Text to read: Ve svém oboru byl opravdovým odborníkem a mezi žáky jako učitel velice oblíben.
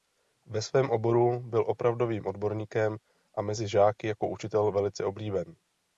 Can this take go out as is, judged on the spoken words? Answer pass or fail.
pass